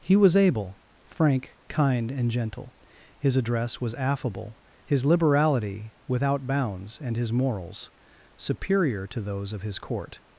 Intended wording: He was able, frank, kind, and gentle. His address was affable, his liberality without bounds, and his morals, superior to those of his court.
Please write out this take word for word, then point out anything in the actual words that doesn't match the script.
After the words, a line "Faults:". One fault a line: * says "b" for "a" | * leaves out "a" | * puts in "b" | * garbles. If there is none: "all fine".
He was able, frank, kind, and gentle. His address was affable, his liberality without bounds, and his morals, superior to those of his court.
Faults:
all fine